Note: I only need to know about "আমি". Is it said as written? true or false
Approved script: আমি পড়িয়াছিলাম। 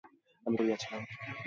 true